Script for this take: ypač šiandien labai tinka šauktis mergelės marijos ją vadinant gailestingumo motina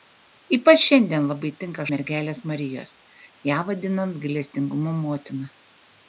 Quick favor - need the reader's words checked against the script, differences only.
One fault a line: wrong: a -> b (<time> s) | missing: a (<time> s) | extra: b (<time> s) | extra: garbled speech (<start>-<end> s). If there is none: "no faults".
missing: šauktis (1.9 s)